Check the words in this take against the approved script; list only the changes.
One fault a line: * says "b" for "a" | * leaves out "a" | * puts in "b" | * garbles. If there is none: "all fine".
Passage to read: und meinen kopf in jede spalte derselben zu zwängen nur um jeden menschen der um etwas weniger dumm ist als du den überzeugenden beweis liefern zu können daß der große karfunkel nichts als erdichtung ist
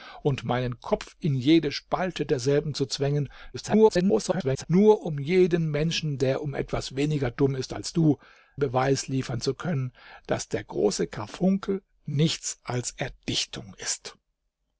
* garbles
* leaves out "den überzeugenden"